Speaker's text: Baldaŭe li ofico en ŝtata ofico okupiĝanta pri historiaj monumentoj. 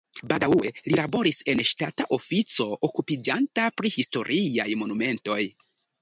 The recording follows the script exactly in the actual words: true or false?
false